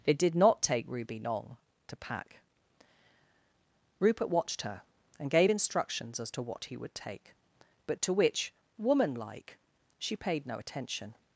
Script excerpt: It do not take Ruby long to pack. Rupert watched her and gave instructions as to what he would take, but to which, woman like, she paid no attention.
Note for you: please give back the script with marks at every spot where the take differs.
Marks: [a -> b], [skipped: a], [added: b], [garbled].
It [do -> did] not take Ruby long to pack. Rupert watched her and gave instructions as to what he would take, but to which, woman like, she paid no attention.